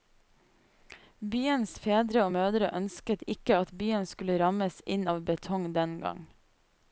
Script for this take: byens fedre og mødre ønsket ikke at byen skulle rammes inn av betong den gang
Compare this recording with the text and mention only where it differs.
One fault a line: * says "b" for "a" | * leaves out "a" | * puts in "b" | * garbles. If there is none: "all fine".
all fine